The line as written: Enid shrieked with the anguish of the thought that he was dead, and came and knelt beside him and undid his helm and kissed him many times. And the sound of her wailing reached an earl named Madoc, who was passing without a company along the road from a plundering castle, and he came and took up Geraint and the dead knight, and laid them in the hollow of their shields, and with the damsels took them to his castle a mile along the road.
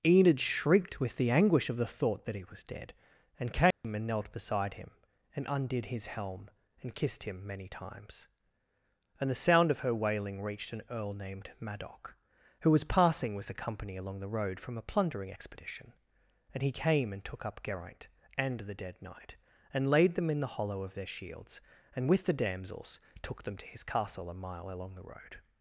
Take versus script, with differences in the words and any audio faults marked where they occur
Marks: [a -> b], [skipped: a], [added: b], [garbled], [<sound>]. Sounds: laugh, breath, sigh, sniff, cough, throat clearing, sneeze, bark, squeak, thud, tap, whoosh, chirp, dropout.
Enid shrieked with the anguish of the thought that he was dead, and came [dropout] and knelt beside him and undid his helm and kissed him many times. And the sound of her wailing reached an earl named Madoc, who was passing [without -> with] a company along the road from a plundering [castle, -> expedition] and he came and took up Geraint and the dead knight, and laid them in the hollow of their shields, and with the damsels took them to his castle a mile along the road.